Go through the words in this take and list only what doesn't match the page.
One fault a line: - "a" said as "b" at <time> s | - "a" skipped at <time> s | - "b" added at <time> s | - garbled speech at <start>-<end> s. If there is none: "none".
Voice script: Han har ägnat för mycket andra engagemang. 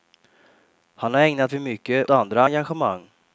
none